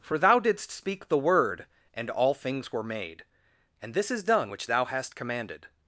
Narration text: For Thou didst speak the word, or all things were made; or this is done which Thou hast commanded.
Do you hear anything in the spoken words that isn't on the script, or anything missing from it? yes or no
yes